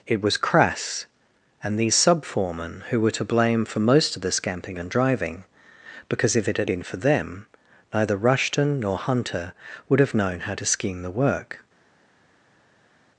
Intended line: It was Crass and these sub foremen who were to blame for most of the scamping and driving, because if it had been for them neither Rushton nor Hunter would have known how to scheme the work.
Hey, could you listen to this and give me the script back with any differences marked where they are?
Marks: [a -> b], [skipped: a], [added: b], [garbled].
It was Crass and these sub foremen who were to blame for most of the scamping and driving, because if it had been for them neither Rushton nor Hunter would have known how to scheme the work.